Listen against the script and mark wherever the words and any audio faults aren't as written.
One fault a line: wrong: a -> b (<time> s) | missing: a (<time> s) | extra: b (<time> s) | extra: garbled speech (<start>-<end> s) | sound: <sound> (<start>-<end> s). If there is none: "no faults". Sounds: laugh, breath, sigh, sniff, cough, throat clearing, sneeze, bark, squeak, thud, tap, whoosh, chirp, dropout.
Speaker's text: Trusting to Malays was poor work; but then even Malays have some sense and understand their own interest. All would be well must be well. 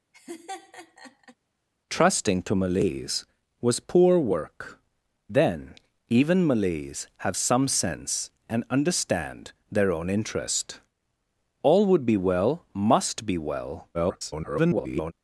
sound: laugh (0.1-1.4 s)
missing: but (4.8 s)
extra: garbled speech (13.9-15.1 s)